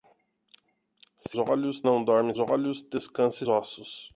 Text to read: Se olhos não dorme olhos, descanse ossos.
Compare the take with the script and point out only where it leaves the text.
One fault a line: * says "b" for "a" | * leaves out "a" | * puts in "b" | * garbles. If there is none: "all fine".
all fine